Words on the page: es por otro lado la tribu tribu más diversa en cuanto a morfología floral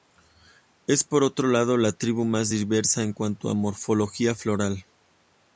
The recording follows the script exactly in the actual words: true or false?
false